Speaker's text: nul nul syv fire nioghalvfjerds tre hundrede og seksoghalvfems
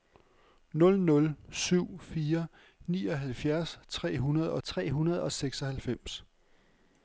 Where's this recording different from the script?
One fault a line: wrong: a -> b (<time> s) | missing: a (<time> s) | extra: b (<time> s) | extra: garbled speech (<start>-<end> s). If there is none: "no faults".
extra: tre hundrede og (4.6 s)